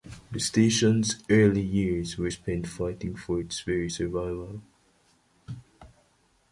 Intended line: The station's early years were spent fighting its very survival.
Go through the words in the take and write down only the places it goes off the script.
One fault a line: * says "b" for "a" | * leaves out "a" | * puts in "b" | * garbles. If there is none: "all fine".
* puts in "for"